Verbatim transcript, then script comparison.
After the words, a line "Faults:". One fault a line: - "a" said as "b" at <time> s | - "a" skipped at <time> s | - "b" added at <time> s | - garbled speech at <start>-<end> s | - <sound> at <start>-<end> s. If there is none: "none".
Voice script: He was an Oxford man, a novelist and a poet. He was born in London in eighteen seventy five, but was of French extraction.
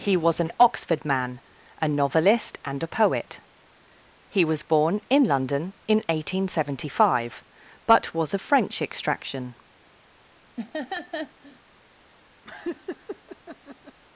He was an Oxford man, a novelist and a poet. He was born in London in eighteen seventy five, but was of French extraction.
Faults:
- laugh at 10.6-11.6 s
- laugh at 12.4-14.0 s